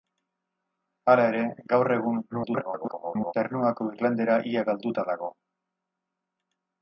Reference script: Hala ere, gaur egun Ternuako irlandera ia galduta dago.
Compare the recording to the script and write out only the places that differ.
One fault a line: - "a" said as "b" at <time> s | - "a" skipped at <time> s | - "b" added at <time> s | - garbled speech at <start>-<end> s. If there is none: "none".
- garbled speech at 2.3-3.3 s